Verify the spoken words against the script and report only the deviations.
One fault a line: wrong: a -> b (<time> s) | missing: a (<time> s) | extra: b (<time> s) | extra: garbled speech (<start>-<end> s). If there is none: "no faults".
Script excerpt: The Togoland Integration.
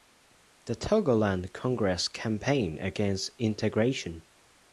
extra: Congress campaigned against (1.5 s)